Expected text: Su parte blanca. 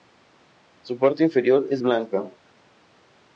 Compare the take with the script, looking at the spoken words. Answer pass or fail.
fail